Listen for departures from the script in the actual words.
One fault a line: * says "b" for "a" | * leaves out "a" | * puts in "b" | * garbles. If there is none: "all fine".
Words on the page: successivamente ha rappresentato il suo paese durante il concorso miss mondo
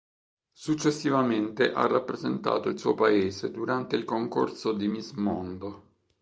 * puts in "di"